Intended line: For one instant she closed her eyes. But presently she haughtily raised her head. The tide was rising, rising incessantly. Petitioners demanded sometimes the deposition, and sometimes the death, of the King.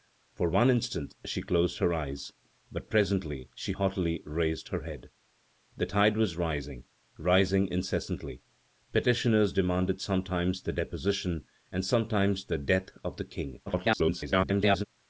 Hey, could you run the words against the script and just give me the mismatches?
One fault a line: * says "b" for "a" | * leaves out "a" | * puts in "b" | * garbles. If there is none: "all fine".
* garbles